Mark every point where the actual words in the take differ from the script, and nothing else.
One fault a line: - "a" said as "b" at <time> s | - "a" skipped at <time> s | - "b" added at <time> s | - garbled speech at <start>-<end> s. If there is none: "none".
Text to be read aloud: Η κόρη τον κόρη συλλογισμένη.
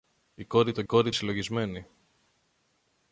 none